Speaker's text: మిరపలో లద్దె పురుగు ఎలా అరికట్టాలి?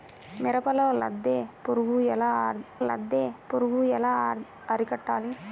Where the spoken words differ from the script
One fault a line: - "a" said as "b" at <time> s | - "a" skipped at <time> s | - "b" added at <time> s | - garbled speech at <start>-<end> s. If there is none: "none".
- "లద్దె పురుగు ఎలా" added at 2.9 s